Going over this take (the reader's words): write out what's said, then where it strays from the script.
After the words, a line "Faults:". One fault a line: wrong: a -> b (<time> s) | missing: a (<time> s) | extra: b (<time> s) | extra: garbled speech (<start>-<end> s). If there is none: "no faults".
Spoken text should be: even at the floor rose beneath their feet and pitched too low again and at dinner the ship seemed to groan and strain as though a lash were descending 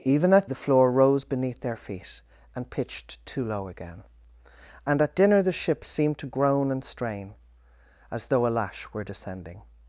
even at the floor rose beneath their feet and pitched too low again and at dinner the ship seemed to groan and strain as though a lash were descending
Faults:
no faults